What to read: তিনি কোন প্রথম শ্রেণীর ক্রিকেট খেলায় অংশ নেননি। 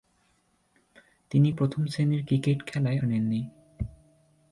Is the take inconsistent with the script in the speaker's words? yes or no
yes